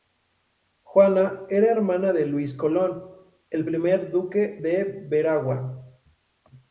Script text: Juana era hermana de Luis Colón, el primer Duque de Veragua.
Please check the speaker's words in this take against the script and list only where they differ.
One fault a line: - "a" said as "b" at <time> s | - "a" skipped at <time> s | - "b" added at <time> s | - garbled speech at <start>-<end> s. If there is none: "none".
none